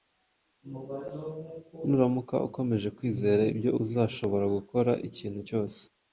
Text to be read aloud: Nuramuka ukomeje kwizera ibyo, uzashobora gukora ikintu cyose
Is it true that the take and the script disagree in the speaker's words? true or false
false